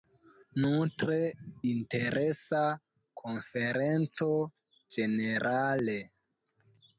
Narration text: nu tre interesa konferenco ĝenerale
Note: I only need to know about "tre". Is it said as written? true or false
true